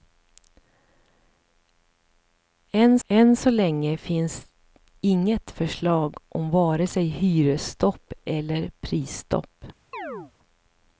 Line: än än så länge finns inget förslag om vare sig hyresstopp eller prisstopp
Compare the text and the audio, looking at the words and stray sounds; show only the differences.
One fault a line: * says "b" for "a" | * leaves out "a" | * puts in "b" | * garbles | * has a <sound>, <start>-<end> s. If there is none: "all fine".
* has a chirp, 9.9-10.3 s